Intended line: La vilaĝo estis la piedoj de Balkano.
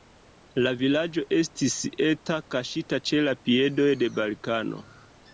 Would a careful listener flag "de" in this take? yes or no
no